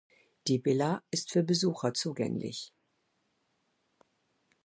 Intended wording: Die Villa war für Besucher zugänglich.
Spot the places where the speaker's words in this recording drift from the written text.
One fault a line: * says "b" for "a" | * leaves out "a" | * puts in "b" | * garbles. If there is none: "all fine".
* says "ist" for "war"